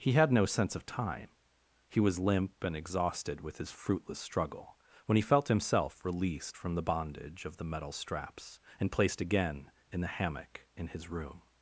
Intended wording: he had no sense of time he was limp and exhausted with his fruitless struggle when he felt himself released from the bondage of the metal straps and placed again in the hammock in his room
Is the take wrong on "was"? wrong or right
right